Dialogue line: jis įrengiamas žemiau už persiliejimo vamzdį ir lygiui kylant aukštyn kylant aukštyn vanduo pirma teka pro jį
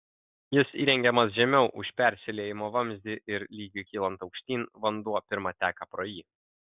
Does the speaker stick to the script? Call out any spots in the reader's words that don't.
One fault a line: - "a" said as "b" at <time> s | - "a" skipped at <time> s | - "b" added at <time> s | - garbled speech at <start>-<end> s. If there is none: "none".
- "kylant aukštyn" skipped at 4.6 s